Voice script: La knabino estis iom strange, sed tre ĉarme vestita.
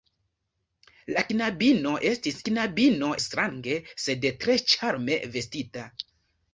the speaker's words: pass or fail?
fail